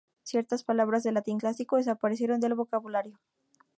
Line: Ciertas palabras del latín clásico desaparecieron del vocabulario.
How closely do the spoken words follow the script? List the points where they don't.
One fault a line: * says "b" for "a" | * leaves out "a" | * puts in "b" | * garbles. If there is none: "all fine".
all fine